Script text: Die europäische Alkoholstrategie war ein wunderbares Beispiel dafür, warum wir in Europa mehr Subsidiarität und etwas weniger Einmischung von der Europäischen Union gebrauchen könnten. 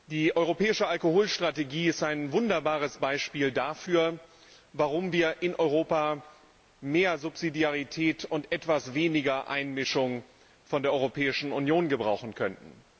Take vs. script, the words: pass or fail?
fail